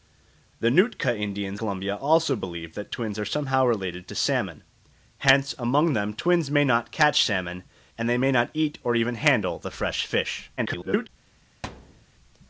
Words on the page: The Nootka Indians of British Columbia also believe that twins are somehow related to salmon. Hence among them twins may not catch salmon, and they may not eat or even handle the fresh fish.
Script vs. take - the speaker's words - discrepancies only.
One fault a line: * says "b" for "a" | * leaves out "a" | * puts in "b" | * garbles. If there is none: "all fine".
* leaves out "of British"
* garbles